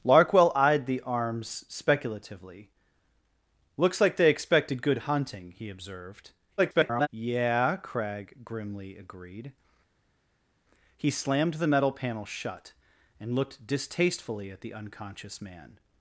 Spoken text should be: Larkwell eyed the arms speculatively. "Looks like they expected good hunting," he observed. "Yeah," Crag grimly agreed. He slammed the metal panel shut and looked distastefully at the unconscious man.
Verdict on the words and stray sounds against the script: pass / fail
fail